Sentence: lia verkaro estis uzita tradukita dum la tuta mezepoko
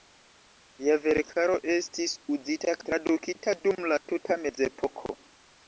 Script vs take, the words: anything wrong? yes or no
no